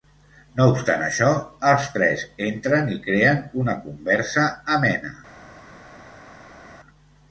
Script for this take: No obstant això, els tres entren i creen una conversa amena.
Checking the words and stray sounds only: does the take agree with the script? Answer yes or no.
yes